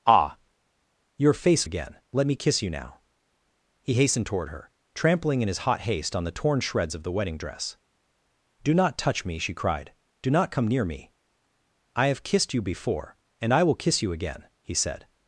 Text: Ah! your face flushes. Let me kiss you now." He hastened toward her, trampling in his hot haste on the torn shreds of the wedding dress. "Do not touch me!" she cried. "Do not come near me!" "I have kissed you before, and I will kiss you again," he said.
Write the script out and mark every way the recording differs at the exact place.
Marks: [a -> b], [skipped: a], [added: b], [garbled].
Ah! your face [flushes. -> again] Let me kiss you now." He hastened toward her, trampling in his hot haste on the torn shreds of the wedding dress. "Do not touch me!" she cried. "Do not come near me!" "I have kissed you before, and I will kiss you again," he said.